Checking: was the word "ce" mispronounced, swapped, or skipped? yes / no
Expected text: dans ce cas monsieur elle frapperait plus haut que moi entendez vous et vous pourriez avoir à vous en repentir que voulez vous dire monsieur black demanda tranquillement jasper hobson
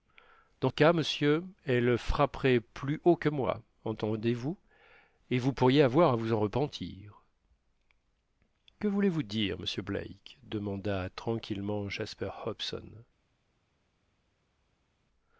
yes